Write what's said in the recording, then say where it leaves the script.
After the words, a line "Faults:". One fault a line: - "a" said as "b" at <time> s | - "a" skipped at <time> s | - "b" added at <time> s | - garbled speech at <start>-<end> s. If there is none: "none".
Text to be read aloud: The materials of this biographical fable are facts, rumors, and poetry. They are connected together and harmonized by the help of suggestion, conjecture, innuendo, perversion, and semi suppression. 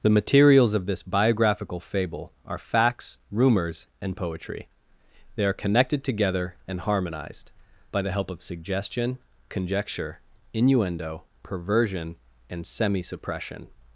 The materials of this biographical fable are facts, rumors, and poetry. They are connected together and harmonized by the help of suggestion, conjecture, innuendo, perversion, and semi suppression.
Faults:
none